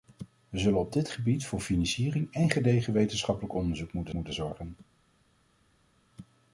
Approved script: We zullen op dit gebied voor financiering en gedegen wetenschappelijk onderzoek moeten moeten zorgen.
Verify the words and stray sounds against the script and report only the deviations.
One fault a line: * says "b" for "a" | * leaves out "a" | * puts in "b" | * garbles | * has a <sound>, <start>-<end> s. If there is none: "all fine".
all fine